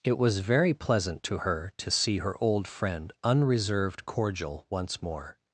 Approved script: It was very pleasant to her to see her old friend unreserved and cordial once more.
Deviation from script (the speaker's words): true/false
true